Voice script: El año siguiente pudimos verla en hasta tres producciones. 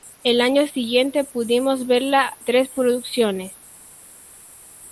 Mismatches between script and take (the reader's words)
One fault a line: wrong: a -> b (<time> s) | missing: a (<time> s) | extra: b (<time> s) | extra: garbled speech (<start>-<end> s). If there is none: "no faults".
missing: en hasta (2.4 s)